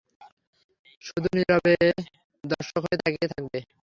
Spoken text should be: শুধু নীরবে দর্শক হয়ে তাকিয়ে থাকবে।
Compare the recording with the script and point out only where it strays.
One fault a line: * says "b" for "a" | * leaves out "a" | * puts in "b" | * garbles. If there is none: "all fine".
all fine